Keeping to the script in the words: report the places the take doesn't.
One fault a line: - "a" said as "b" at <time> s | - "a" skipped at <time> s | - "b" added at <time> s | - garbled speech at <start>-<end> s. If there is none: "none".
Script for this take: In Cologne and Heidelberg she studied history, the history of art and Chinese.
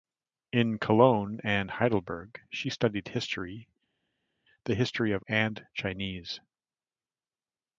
- "art" skipped at 5.2 s